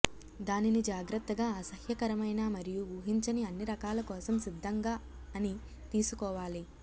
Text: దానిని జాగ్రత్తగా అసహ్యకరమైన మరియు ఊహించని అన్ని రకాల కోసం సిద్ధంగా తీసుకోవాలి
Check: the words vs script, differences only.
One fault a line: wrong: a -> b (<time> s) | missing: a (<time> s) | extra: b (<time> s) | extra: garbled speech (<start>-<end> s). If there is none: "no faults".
extra: అని (5.3 s)